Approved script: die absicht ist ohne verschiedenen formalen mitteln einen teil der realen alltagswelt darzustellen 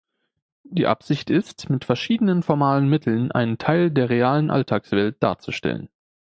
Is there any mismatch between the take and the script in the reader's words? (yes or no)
yes